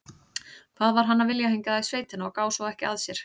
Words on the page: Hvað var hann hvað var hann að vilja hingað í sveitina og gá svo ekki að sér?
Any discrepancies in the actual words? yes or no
yes